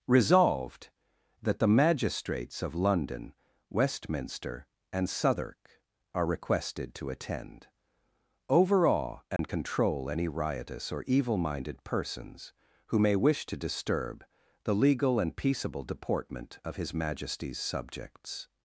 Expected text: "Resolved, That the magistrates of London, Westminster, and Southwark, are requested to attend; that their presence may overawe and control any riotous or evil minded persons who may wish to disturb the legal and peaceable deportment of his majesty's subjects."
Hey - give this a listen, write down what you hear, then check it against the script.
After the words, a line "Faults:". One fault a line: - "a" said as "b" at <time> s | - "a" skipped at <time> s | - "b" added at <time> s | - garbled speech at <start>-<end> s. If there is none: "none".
"Resolved, That the magistrates of London, Westminster, and Southwark, are requested to attend; overawe and control any riotous or evil minded persons who may wish to disturb the legal and peaceable deportment of his majesty's subjects."
Faults:
- "that their presence may" skipped at 7.7 s